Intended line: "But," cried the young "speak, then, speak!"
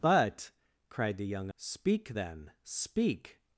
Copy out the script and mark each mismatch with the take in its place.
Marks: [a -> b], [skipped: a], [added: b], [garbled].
"But," cried the young "speak, then, speak!"